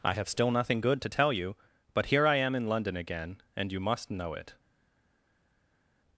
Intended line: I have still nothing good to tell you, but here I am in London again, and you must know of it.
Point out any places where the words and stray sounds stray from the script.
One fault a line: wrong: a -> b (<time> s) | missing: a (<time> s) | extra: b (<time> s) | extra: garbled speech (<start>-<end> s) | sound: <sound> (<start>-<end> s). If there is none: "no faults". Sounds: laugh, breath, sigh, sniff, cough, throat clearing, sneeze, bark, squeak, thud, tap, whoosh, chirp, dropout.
missing: of (4.3 s)